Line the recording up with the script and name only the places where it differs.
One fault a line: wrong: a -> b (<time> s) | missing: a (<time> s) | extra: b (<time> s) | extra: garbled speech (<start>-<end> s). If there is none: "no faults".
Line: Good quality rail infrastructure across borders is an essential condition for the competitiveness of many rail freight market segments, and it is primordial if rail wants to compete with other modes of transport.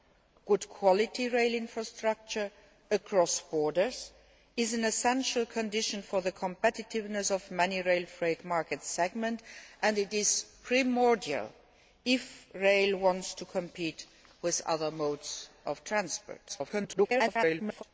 extra: garbled speech (16.5-17.8 s)